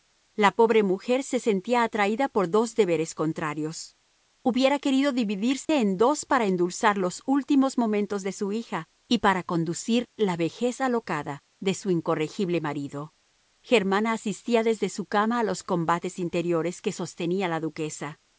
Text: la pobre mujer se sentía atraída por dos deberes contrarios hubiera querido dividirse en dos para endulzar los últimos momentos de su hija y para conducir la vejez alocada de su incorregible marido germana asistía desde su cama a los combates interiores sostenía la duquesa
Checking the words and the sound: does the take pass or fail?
fail